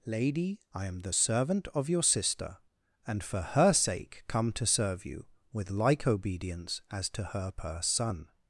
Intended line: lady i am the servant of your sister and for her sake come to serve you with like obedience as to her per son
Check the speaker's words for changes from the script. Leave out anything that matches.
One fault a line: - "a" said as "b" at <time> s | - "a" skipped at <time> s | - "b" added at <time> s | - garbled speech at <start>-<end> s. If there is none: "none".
none